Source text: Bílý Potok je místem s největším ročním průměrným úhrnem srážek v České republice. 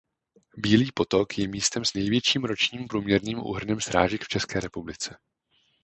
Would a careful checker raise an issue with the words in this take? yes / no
no